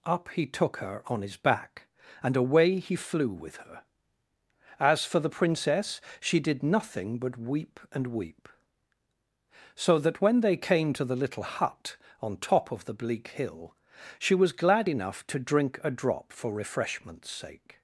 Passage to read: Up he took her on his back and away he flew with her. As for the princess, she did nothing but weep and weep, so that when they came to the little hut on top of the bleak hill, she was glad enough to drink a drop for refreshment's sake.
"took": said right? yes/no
yes